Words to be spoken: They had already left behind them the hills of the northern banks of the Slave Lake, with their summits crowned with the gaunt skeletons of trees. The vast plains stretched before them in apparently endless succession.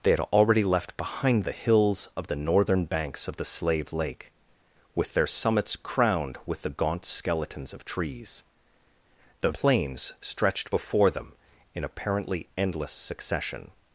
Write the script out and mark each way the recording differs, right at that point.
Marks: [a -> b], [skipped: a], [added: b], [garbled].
They had already left behind [skipped: them] the hills of the northern banks of the Slave Lake, with their summits crowned with the gaunt skeletons of trees. The [skipped: vast] plains stretched before them in apparently endless succession.